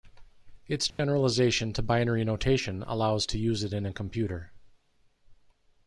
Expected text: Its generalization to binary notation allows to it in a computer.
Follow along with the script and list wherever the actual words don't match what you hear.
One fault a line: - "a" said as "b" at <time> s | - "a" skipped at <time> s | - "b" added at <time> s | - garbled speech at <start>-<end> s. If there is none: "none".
- "use" added at 3.4 s